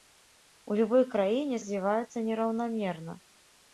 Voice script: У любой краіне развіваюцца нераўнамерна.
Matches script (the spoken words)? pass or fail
pass